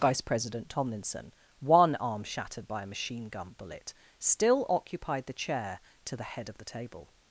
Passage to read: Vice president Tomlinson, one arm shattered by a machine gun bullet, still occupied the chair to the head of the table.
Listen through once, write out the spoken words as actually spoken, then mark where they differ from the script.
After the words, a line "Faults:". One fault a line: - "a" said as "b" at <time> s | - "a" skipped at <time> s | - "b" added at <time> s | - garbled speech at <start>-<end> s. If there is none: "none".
Vice president Tomlinson, one arm shattered by a machine gun bullet, still occupied the chair to the head of the table.
Faults:
none